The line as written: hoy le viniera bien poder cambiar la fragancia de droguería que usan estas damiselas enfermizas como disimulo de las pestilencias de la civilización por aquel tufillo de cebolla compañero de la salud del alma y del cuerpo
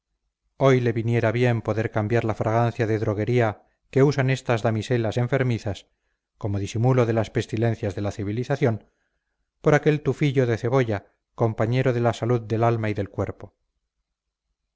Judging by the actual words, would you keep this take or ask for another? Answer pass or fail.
pass